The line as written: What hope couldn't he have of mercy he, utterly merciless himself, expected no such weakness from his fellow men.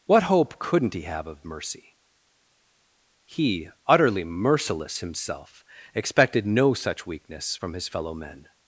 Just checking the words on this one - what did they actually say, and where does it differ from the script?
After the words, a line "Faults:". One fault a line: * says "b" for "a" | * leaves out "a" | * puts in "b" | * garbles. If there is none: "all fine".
What hope couldn't he have of mercy he, utterly merciless himself, expected no such weakness from his fellow men.
Faults:
all fine